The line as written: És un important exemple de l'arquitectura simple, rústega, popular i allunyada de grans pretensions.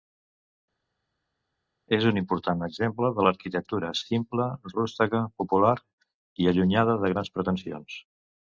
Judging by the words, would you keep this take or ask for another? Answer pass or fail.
pass